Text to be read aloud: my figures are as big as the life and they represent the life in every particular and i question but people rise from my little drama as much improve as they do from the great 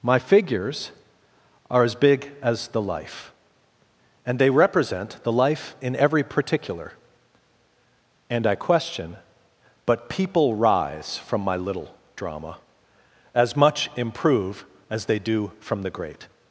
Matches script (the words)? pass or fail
pass